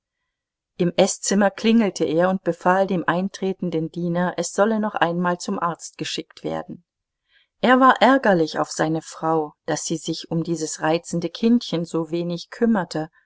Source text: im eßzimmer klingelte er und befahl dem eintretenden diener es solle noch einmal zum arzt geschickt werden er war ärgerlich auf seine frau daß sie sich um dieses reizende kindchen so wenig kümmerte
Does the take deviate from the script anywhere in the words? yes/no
no